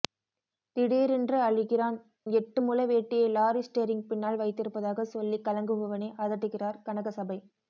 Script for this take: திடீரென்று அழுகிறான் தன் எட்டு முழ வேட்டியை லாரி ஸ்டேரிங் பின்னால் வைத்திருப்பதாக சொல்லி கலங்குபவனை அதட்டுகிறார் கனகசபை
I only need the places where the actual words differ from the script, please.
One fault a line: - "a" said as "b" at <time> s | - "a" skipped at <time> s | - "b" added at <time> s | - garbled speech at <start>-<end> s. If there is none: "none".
- "தன்" skipped at 2.0 s